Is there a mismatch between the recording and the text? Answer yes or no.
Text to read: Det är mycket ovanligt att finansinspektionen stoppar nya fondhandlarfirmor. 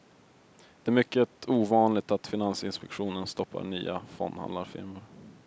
no